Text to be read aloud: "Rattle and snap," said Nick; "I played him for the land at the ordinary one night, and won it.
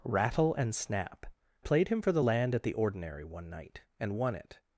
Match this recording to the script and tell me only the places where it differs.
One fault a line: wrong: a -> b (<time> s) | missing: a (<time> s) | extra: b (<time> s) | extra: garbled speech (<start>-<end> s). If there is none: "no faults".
missing: said Nick I (1.3 s)